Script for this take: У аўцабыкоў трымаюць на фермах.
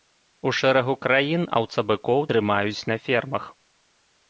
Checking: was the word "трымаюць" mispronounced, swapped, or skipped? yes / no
no